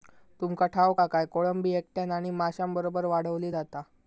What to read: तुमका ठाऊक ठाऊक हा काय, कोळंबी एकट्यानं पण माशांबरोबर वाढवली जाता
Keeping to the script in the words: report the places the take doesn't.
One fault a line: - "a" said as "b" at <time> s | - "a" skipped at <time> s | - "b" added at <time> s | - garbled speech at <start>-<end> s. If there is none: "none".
- "ठाऊक" skipped at 1.0 s
- "पण" said as "आणि" at 2.1 s